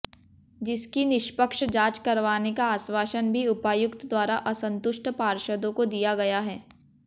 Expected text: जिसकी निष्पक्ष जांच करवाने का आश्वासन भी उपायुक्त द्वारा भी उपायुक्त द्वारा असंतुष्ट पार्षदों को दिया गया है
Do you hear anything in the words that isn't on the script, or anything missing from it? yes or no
yes